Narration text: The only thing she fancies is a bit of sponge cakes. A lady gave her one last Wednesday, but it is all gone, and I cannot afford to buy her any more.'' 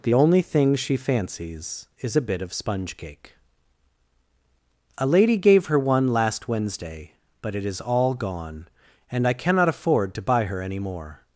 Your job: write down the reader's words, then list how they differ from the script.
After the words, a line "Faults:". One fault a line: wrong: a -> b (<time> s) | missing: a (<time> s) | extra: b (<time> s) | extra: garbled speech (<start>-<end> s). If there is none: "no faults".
The only thing she fancies is a bit of sponge cake. A lady gave her one last Wednesday, but it is all gone, and I cannot afford to buy her any more.''
Faults:
wrong: cakes -> cake (3.0 s)